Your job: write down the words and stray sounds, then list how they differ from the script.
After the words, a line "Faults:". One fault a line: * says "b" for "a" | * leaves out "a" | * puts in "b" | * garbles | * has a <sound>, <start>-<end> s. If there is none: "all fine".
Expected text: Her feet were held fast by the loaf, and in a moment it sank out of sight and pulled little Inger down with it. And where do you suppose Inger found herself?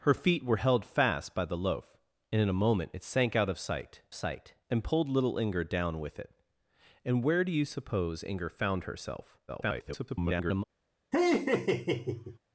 Her feet were held fast by the loaf, and in a moment it sank out of sight sight and pulled little Inger down with it. And where do you suppose Inger found herself? [garbled]
Faults:
* puts in "sight"
* garbles
* has a laugh, 11.1-12.4 s